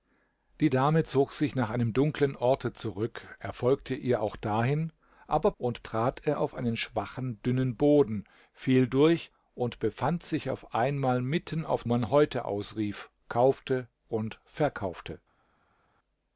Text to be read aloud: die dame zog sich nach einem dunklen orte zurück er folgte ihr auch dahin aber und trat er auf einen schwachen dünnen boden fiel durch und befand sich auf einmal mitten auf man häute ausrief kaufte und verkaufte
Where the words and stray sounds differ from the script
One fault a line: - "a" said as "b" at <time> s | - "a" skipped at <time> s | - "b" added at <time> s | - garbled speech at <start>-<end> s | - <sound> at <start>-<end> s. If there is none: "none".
none